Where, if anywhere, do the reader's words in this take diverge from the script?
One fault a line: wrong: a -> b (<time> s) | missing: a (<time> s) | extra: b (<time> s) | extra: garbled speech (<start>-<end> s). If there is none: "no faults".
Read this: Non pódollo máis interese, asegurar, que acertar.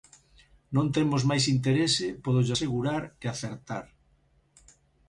wrong: pódollo -> temos (0.9 s)
extra: pódollo (2.2 s)